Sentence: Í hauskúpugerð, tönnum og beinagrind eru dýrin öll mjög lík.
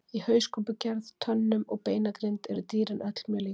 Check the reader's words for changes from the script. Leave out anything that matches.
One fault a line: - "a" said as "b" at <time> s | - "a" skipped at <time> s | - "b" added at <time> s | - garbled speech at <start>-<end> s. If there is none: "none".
none